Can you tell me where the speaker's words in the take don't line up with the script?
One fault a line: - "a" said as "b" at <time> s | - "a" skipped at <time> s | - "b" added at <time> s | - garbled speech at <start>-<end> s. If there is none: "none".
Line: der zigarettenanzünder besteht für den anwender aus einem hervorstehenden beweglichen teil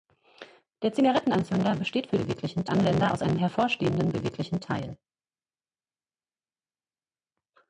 - "den" said as "beweglichen" at 2.2 s